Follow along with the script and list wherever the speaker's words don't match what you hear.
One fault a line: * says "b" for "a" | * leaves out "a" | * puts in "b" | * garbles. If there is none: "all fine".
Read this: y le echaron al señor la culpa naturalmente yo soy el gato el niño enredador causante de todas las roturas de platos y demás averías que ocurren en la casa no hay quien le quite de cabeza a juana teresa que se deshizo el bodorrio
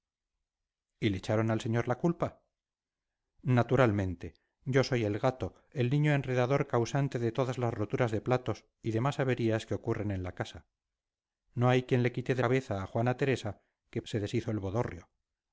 all fine